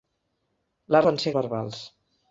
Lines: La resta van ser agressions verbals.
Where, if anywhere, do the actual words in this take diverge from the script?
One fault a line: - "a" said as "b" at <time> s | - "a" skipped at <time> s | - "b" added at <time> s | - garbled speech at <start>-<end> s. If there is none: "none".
- "resta" skipped at 1.0 s
- "agressions" skipped at 1.3 s